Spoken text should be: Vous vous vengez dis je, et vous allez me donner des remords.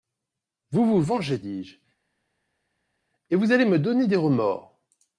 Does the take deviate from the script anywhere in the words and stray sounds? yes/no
no